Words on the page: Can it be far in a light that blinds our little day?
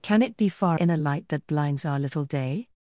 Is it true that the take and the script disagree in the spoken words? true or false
false